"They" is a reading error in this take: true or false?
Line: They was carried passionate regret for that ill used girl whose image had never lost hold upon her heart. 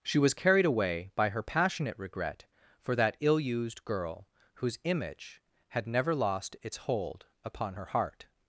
true